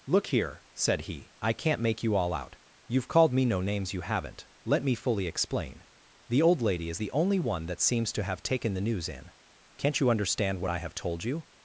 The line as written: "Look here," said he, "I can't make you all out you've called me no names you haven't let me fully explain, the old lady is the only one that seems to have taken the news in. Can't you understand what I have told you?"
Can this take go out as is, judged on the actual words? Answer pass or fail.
pass